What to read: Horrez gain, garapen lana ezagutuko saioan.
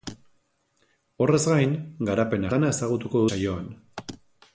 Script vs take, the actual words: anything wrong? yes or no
no